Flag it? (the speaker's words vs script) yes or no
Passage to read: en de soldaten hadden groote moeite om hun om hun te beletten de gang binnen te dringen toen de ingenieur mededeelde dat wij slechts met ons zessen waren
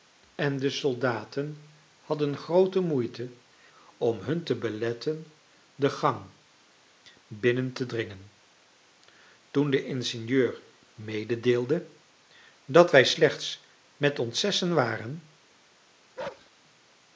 yes